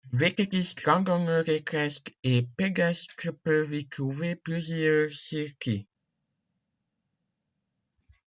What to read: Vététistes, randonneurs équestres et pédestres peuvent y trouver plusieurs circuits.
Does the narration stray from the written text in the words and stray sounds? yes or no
no